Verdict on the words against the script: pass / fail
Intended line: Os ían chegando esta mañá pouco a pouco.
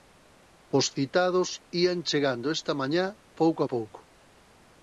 fail